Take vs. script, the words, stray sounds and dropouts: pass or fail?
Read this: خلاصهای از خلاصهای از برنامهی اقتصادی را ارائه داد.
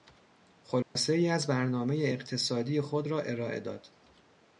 fail